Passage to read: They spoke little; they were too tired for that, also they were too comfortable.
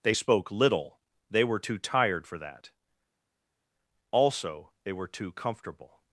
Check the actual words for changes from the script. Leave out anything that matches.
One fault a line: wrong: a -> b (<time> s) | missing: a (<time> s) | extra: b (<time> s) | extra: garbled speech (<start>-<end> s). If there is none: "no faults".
no faults